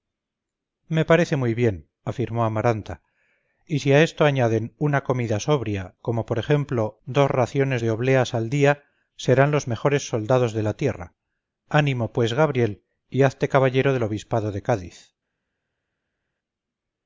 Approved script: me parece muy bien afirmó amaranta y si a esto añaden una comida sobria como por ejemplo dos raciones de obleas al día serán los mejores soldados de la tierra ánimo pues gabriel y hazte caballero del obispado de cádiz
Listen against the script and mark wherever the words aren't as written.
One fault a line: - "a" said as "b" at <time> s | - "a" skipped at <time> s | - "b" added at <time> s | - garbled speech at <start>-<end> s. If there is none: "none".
none